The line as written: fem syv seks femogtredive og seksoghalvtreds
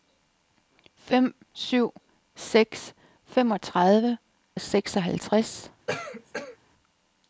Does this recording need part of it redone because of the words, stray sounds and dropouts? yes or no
yes